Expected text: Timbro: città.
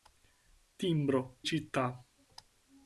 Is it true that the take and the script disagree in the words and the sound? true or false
false